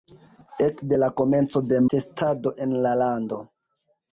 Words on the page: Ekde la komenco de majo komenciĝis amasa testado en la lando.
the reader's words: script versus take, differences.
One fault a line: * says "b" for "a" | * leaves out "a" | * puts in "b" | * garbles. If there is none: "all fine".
* leaves out "majo komenciĝis amasa"